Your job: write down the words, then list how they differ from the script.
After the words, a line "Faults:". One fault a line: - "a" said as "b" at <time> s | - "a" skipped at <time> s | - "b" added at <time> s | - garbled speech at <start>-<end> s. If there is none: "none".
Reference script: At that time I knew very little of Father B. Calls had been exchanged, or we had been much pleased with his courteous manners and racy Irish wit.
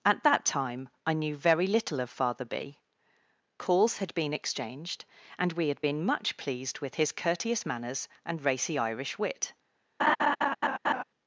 At that time I knew very little of Father B. Calls had been exchanged, and we had been much pleased with his courteous manners and racy Irish wit.
Faults:
- "or" said as "and" at 5.4 s